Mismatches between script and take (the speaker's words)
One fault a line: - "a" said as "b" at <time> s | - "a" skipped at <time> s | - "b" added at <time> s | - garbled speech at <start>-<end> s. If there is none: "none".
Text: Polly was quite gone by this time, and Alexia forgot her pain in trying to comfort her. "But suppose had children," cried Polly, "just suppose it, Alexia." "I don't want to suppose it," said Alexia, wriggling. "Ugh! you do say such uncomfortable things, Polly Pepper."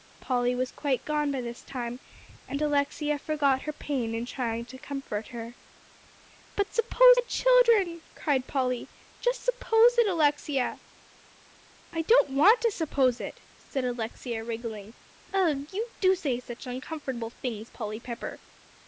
none